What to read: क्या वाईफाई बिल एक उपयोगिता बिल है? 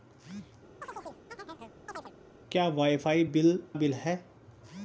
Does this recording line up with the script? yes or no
no